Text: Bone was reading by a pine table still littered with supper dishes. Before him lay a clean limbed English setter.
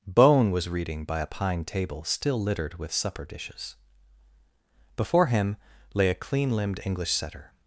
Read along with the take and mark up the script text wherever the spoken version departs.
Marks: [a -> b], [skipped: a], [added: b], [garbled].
Bone was reading by a pine table still littered with supper dishes. Before him lay a clean limbed English setter.